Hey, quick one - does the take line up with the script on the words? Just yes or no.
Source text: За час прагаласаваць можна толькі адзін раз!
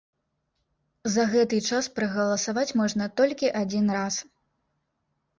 no